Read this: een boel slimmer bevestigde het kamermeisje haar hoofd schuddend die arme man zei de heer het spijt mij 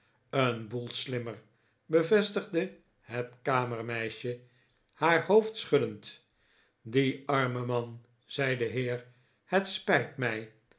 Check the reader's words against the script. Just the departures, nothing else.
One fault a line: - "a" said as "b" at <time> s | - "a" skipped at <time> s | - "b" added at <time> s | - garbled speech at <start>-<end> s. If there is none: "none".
none